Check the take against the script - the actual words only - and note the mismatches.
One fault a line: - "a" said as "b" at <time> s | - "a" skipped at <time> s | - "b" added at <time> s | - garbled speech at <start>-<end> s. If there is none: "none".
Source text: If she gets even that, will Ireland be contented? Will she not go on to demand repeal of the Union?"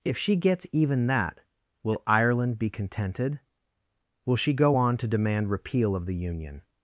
- "not" skipped at 4.5 s